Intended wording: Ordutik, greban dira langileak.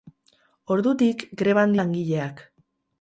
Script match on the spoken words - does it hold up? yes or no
no